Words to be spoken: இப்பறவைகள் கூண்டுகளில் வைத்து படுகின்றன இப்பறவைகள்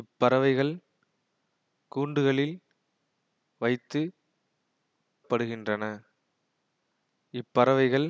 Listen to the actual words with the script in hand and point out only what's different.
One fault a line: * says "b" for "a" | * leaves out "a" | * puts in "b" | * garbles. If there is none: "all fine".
all fine